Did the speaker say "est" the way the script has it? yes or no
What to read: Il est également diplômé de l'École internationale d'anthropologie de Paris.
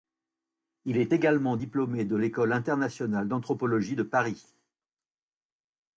yes